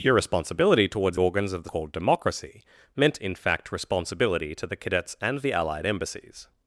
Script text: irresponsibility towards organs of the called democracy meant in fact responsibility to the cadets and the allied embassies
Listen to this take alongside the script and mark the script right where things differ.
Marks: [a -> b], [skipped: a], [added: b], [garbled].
irresponsibility towards organs of the called democracy meant in fact responsibility to the cadets and the allied embassies